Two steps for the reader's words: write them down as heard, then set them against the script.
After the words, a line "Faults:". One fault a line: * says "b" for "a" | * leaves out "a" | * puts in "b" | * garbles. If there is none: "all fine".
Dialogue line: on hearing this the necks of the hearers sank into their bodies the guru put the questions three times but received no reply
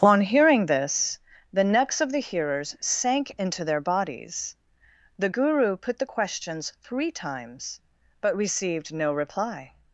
on hearing this the necks of the hearers sank into their bodies the guru put the questions three times but received no reply
Faults:
all fine